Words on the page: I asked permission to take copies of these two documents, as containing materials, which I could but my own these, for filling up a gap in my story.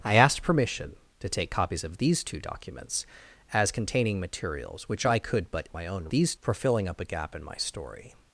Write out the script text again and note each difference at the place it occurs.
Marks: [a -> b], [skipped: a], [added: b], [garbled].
I asked permission to take copies of these two documents, as containing materials, which I could but my own these, for filling up a gap in my story.